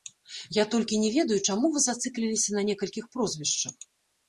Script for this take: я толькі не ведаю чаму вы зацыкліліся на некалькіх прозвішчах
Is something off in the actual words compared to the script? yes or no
no